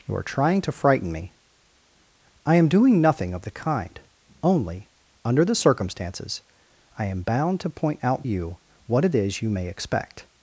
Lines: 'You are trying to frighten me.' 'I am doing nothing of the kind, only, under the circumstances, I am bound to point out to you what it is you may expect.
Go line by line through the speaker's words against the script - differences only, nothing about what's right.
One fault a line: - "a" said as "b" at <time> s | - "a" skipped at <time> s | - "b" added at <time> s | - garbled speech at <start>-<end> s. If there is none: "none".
- "to" skipped at 8.3 s